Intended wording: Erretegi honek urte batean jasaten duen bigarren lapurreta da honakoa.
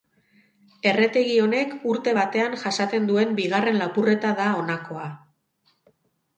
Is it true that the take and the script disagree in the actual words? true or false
false